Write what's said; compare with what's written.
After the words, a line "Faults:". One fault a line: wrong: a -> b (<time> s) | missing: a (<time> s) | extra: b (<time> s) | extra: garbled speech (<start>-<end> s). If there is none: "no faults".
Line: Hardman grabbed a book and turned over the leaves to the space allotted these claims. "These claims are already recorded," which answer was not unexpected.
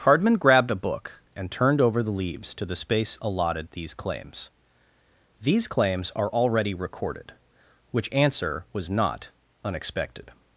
Hardman grabbed a book and turned over the leaves to the space allotted these claims. "These claims are already recorded," which answer was not unexpected.
Faults:
no faults